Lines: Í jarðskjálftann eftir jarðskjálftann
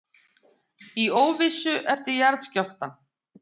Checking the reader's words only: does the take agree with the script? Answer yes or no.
no